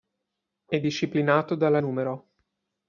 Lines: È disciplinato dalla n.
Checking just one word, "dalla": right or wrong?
right